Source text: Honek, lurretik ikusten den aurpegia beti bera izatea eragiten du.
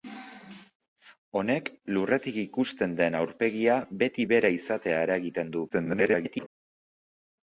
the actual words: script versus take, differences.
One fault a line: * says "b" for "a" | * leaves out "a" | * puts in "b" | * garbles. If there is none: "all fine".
* garbles